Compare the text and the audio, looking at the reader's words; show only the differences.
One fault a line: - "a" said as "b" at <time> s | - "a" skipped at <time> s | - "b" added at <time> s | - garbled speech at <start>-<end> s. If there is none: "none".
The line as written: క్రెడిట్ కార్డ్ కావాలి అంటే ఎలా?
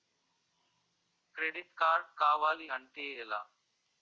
none